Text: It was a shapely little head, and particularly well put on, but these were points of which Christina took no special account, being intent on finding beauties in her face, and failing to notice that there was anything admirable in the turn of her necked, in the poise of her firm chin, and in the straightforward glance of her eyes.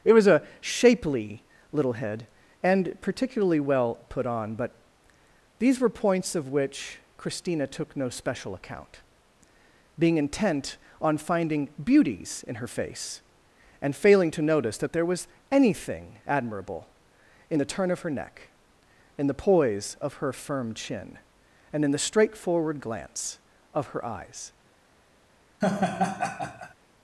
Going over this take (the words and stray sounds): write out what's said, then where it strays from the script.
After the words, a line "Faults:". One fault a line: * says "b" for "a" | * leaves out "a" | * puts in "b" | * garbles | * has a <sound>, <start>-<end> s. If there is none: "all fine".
It was a shapely little head, and particularly well put on, but these were points of which Christina took no special account, being intent on finding beauties in her face, and failing to notice that there was anything admirable in the turn of her neck, in the poise of her firm chin, and in the straightforward glance of her eyes.
Faults:
* says "neck" for "necked"
* has a laugh, 25.6-26.7 s